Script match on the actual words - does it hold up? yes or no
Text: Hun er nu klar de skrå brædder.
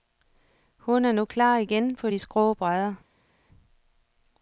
no